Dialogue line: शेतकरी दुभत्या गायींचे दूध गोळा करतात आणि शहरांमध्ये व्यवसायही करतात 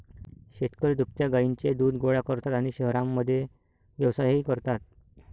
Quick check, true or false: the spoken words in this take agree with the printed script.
true